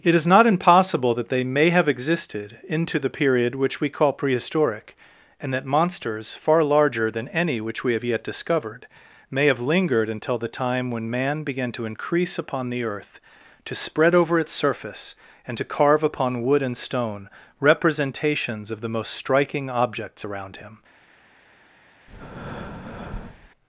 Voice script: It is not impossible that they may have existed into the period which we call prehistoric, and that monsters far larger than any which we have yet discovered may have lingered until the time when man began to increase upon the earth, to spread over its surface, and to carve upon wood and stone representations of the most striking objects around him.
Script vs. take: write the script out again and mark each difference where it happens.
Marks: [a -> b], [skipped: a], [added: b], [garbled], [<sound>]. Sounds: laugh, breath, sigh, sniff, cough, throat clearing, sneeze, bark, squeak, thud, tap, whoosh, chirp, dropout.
It is not impossible that they may have existed into the period which we call prehistoric, and that monsters far larger than any which we have yet discovered may have lingered until the time when man began to increase upon the earth, to spread over its surface, and to carve upon wood and stone representations of the most striking objects around him. [breath]